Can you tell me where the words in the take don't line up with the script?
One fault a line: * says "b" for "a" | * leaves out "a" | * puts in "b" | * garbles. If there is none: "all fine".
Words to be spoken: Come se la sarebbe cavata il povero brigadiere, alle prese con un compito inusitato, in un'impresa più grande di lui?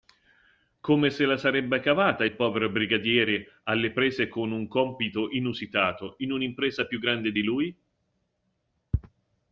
all fine